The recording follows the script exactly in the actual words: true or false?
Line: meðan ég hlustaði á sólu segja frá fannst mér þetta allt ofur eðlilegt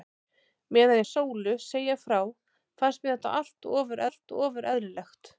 false